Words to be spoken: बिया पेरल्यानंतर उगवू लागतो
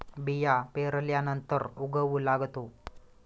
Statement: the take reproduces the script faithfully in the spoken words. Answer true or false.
true